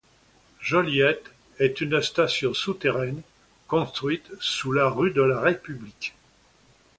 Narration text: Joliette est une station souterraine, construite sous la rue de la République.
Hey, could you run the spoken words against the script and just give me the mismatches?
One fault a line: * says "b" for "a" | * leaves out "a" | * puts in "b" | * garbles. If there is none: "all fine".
all fine